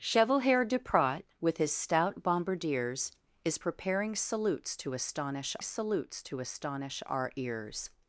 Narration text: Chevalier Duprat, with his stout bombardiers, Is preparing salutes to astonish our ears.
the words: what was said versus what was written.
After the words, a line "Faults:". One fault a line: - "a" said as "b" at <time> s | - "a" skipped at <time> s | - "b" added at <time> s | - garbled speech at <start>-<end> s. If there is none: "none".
Chevalier Duprat, with his stout bombardiers, Is preparing salutes to astonish salutes to astonish our ears.
Faults:
- "salutes to astonish" added at 5.6 s